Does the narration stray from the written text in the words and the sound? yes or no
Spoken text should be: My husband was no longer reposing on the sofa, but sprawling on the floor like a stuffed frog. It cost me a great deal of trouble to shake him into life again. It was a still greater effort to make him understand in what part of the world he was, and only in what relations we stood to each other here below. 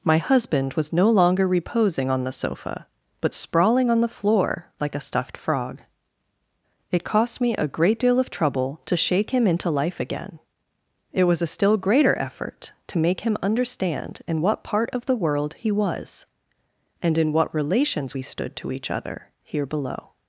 yes